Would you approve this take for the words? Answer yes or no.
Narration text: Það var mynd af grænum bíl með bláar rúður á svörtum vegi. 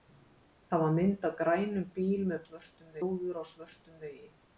no